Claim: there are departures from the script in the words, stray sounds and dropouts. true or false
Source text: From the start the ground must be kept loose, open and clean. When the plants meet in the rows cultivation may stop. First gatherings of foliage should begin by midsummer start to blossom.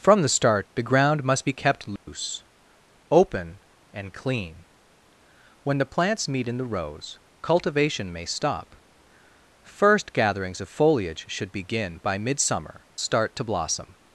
true